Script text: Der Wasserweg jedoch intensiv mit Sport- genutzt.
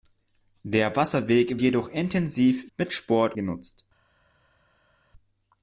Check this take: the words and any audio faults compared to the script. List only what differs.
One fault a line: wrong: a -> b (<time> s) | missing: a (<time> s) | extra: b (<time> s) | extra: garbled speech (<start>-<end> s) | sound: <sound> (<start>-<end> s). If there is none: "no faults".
no faults